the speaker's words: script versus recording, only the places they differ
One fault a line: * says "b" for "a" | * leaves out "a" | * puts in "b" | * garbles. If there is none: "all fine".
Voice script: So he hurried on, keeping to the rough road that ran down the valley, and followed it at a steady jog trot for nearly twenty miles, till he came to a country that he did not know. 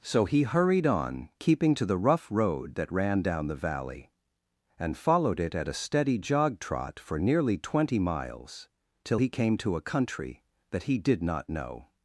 all fine